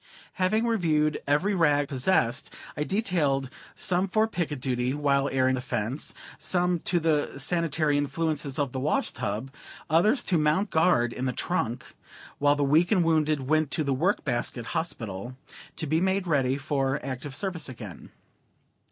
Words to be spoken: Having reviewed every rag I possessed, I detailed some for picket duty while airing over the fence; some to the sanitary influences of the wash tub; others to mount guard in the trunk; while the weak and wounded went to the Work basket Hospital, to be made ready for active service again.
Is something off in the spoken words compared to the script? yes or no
yes